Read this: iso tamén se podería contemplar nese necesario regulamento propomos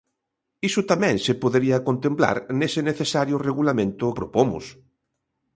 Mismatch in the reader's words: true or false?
false